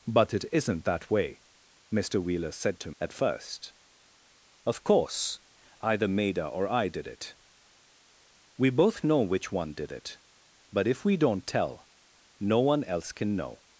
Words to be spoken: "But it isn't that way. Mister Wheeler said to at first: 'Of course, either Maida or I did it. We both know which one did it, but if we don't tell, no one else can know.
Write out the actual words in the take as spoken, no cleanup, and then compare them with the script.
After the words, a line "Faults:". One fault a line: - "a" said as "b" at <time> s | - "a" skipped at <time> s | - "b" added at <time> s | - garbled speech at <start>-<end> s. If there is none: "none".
"But it isn't that way. Mister Wheeler said to at first: 'Of course, either Maida or I did it. We both know which one did it, but if we don't tell, no one else can know.
Faults:
none